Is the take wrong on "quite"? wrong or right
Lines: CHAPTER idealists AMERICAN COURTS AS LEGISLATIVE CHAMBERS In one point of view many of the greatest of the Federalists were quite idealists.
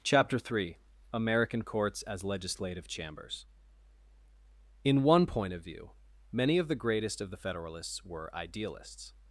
wrong